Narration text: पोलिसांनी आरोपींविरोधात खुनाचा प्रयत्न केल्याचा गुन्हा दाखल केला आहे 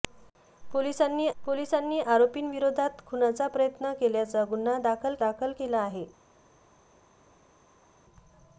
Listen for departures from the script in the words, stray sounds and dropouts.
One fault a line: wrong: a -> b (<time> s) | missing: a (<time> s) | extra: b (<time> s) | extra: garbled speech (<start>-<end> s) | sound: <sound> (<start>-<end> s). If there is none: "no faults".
extra: पोलिसांनी (1.4 s)
extra: दाखल (5.2 s)